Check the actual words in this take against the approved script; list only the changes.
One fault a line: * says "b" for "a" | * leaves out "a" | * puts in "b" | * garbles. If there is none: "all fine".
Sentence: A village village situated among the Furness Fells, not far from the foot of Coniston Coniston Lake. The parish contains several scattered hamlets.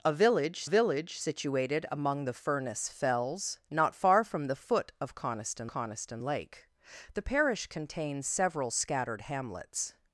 all fine